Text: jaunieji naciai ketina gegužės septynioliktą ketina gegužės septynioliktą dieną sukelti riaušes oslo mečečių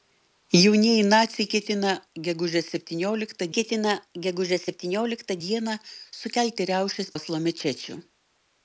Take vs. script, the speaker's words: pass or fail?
pass